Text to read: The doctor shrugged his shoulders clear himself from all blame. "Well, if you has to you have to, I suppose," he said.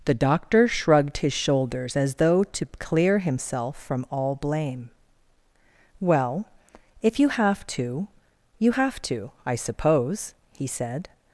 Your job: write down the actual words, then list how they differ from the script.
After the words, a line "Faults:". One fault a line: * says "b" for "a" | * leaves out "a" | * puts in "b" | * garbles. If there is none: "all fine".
The doctor shrugged his shoulders as though to clear himself from all blame. "Well, if you have to you have to, I suppose," he said.
Faults:
* puts in "as though to"
* says "have" for "has"